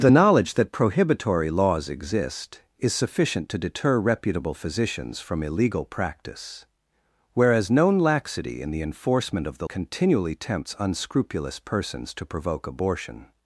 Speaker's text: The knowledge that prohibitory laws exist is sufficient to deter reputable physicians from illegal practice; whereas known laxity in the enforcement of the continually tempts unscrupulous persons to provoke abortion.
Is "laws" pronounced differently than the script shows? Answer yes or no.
no